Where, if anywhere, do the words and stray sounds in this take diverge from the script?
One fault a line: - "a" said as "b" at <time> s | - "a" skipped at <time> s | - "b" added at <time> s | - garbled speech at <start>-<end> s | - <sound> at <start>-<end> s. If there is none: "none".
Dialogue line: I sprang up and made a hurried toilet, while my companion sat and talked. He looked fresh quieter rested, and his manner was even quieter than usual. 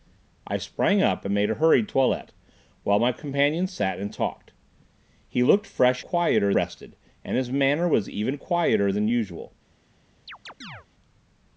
- chirp at 10.3-10.9 s